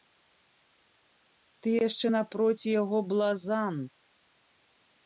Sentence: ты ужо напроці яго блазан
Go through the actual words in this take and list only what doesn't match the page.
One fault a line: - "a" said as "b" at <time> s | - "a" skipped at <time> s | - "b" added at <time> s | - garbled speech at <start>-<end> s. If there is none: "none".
- "ужо" said as "яшчэ" at 1.9 s